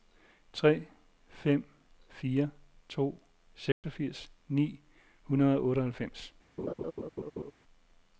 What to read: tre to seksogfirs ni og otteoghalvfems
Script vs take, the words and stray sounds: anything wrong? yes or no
yes